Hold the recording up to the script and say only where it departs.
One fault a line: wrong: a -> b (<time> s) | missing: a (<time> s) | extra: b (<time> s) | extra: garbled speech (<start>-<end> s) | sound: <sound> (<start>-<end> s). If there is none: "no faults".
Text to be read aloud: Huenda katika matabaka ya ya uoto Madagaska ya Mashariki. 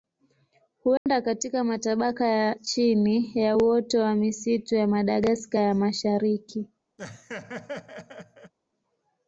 sound: dropout (1.0-1.1 s)
extra: chini (2.5 s)
extra: wa misitu ya (4.0 s)
sound: laugh (7.0-8.5 s)